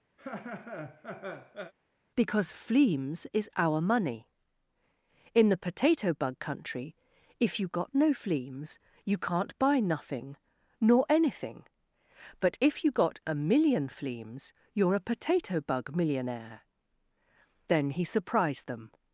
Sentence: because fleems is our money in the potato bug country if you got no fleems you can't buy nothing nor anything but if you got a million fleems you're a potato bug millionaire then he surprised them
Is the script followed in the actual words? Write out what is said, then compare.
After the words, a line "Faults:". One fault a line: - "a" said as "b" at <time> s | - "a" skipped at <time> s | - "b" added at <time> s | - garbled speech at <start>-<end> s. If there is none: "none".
because fleems is our money in the potato bug country if you got no fleems you can't buy nothing nor anything but if you got a million fleems you're a potato bug millionaire then he surprised them
Faults:
none